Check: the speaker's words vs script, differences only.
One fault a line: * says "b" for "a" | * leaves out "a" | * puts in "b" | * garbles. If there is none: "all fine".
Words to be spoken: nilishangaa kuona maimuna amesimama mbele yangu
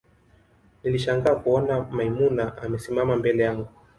all fine